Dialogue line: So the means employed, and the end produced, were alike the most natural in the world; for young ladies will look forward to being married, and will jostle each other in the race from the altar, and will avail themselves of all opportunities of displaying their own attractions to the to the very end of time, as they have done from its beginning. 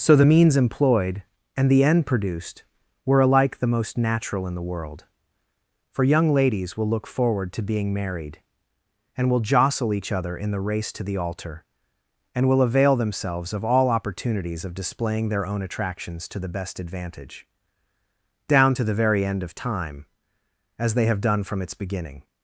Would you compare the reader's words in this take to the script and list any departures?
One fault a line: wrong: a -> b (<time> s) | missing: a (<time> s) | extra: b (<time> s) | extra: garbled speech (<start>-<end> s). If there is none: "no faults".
wrong: from -> to (10.9 s)
extra: best advantage down (16.5 s)